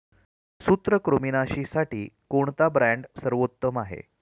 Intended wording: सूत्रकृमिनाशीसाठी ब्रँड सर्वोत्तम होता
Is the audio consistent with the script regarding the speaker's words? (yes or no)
no